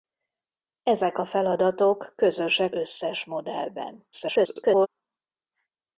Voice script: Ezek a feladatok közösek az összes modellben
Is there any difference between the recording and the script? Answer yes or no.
yes